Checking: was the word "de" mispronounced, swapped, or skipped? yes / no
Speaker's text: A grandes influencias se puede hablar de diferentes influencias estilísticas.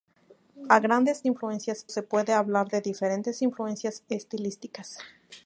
no